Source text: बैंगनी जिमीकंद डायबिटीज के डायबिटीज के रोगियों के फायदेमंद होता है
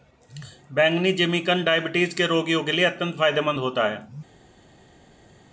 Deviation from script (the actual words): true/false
true